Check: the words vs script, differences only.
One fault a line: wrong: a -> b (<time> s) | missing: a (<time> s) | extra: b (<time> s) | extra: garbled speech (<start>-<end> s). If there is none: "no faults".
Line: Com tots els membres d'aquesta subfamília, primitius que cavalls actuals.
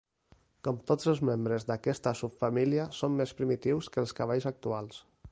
extra: són més (3.0 s)
extra: els (4.0 s)